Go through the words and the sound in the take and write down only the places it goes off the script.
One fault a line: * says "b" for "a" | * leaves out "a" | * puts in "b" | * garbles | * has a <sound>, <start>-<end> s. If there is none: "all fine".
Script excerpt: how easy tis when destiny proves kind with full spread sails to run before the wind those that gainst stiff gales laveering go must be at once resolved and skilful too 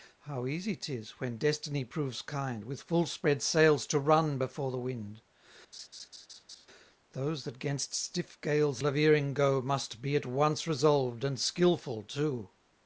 * has a laugh, 5.7-6.7 s